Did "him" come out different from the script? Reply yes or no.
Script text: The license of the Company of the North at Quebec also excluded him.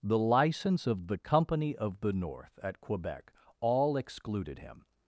no